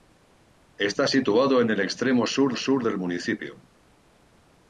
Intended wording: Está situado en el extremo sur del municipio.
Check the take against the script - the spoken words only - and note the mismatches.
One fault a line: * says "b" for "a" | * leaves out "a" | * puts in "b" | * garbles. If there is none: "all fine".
* puts in "sur"